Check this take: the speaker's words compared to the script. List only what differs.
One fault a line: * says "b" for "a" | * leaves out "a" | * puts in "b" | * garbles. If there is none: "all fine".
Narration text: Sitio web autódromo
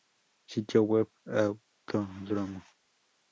all fine